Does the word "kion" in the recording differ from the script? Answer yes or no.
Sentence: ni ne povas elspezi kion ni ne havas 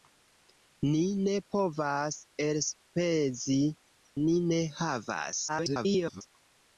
yes